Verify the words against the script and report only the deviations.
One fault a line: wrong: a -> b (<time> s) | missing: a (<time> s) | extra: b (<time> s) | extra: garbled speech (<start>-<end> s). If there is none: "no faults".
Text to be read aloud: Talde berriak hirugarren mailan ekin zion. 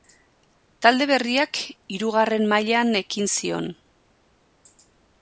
no faults